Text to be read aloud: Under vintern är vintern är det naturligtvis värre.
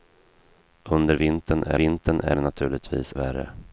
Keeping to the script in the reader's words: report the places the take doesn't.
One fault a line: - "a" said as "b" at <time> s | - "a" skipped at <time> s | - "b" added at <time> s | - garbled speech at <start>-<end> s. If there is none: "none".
none